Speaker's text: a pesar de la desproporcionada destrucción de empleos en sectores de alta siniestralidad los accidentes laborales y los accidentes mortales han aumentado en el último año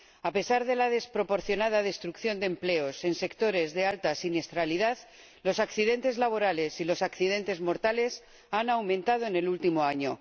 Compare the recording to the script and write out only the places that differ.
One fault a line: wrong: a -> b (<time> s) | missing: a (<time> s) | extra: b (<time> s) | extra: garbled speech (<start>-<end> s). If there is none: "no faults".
no faults